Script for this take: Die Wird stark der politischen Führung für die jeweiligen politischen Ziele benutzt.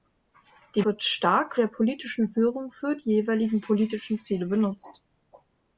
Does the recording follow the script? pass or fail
pass